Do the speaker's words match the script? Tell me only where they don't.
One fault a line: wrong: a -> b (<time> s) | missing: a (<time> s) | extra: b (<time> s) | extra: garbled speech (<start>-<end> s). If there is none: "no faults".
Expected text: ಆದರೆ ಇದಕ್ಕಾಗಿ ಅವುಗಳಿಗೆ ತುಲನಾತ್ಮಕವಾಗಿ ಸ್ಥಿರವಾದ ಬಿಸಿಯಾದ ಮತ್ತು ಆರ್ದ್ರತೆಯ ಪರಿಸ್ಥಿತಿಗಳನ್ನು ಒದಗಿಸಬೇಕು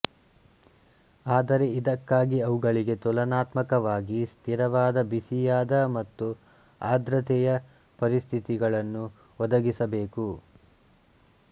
no faults